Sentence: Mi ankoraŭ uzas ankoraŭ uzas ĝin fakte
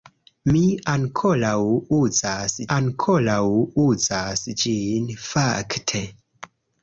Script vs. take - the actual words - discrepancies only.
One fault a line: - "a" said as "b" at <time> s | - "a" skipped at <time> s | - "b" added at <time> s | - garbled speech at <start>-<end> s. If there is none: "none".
none